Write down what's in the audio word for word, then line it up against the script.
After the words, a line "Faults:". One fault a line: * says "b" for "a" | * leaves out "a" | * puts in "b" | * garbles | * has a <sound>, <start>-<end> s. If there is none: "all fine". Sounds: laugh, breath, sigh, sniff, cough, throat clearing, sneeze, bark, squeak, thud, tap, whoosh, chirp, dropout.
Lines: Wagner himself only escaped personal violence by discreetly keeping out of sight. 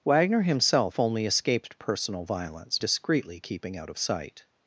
Wagner himself only escaped personal violence discreetly keeping out of sight.
Faults:
* leaves out "by"